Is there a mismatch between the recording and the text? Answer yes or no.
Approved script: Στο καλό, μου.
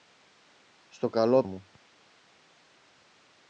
no